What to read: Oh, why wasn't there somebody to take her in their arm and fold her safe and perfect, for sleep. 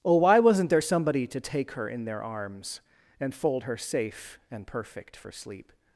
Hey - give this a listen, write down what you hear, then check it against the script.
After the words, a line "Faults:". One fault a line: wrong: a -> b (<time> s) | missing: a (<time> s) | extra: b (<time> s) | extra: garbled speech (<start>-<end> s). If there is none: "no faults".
Oh, why wasn't there somebody to take her in their arms and fold her safe and perfect, for sleep.
Faults:
wrong: arm -> arms (2.2 s)